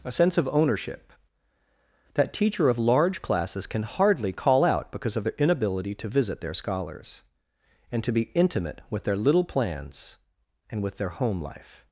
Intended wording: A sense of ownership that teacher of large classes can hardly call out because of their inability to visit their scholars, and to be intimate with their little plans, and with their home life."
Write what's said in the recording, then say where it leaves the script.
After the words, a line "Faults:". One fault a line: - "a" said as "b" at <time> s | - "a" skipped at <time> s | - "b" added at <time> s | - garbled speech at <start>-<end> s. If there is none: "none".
A sense of ownership that teacher of large classes can hardly call out because of their inability to visit their scholars, and to be intimate with their little plans, and with their home life."
Faults:
none